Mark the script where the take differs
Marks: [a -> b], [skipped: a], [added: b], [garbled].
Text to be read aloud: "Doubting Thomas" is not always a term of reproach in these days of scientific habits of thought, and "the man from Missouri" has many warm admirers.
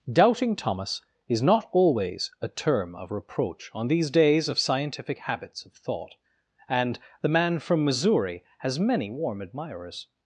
"Doubting Thomas" is not always a term of reproach [in -> on] these days of scientific habits of thought, and "the man from Missouri" has many warm admirers.